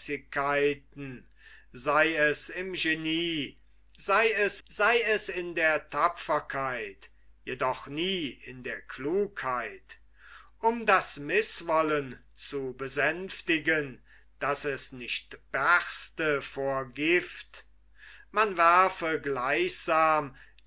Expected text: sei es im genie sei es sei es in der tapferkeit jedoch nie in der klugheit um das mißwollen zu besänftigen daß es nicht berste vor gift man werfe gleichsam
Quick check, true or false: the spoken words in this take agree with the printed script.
true